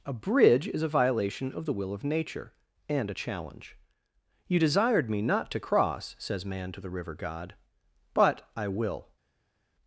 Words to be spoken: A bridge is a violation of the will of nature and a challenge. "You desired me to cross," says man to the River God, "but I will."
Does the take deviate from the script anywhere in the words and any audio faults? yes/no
yes